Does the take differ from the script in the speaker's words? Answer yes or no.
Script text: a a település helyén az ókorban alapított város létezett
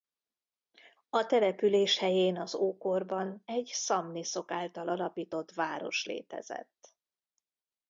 yes